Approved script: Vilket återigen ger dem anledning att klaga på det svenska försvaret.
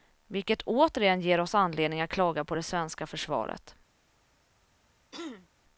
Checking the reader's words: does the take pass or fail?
fail